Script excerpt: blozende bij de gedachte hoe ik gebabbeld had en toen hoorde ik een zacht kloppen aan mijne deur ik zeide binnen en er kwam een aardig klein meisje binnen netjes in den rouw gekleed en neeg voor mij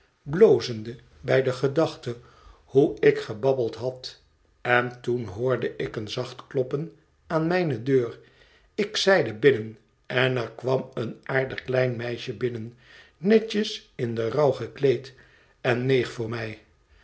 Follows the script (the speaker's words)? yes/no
yes